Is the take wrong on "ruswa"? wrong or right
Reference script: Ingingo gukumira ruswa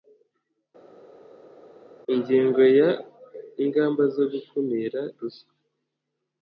right